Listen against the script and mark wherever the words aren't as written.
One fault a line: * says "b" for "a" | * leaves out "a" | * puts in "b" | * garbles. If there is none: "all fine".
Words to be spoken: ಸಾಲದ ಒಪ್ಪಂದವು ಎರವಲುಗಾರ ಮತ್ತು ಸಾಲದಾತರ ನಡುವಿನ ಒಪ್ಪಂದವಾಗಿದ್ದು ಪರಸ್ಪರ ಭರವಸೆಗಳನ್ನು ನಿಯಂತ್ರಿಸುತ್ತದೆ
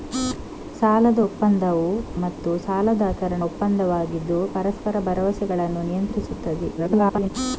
* leaves out "ಎರವಲುಗಾರ"
* leaves out "ನಡುವಿನ"
* garbles